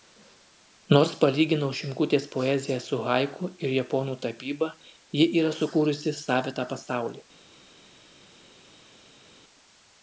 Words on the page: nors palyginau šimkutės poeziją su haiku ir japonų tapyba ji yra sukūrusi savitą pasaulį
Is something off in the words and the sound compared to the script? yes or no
no